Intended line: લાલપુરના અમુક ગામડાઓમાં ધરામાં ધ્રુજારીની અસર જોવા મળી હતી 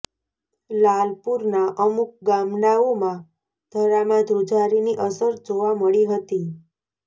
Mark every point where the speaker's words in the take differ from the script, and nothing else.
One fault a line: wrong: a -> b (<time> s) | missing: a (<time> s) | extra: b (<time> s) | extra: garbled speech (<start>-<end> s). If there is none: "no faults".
no faults